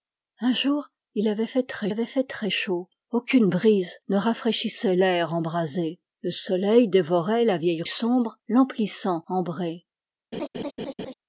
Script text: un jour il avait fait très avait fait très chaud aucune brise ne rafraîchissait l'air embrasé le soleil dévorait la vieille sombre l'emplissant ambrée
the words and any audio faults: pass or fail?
fail